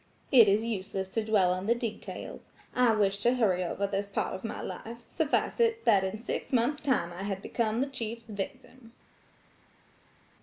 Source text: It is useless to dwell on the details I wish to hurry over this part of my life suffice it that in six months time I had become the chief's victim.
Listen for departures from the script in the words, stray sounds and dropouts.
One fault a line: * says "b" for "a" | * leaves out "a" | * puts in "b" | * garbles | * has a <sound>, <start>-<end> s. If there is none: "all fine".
all fine